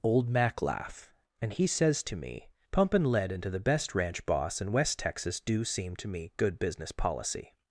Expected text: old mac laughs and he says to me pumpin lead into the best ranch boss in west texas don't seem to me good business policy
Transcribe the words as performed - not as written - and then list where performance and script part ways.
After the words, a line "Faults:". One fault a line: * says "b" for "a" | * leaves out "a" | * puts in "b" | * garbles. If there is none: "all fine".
old mac laugh and he says to me pumpin lead into the best ranch boss in west texas do seem to me good business policy
Faults:
* says "laugh" for "laughs"
* says "do" for "don't"